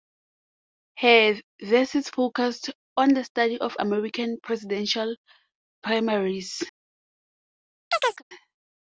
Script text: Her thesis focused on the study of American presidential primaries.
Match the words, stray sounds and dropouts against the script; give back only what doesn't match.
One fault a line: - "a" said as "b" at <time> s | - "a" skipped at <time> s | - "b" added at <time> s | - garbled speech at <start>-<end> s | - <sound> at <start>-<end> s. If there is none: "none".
- chirp at 7.9-8.2 s